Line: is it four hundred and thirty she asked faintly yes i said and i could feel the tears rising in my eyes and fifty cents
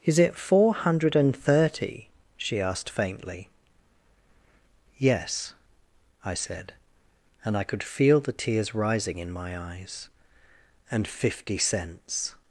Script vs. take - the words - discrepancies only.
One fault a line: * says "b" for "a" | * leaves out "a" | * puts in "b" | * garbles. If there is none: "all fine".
all fine